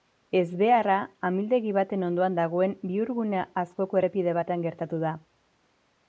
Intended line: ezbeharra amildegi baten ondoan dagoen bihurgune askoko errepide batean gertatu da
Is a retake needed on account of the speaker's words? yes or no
no